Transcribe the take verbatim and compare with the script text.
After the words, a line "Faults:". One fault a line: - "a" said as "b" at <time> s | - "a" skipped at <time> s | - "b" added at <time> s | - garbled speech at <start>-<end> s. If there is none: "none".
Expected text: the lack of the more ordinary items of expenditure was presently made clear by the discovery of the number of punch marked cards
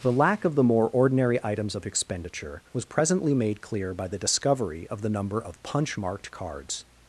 the lack of the more ordinary items of expenditure was presently made clear by the discovery of the number of punch marked cards
Faults:
none